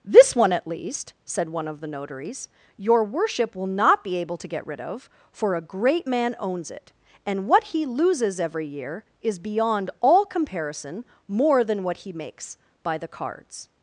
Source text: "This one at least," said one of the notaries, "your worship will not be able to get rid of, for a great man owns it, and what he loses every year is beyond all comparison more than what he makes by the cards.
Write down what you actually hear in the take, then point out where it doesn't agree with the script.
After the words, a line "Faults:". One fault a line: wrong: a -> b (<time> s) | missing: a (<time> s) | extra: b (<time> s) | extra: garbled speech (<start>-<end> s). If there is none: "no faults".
"This one at least," said one of the notaries, "your worship will not be able to get rid of, for a great man owns it, and what he loses every year is beyond all comparison more than what he makes by the cards.
Faults:
no faults